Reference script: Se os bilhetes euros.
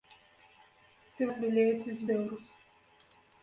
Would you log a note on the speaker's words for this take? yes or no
no